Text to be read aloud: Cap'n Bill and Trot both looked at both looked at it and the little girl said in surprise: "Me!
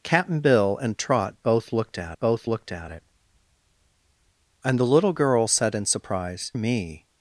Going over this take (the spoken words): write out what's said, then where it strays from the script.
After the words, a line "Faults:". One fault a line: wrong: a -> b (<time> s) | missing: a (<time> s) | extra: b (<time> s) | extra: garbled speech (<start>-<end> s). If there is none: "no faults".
Cap'n Bill and Trot both looked at both looked at it and the little girl said in surprise: "Me!
Faults:
no faults